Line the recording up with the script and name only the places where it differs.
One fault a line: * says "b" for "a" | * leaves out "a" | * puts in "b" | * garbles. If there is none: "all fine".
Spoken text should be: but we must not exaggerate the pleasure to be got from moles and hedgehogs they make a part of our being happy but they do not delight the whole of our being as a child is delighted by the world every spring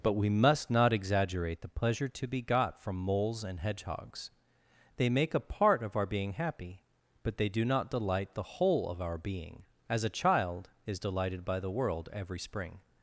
all fine